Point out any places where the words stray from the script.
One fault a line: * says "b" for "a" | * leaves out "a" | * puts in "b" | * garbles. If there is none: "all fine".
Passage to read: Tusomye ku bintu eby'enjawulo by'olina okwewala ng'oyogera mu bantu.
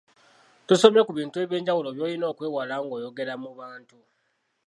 all fine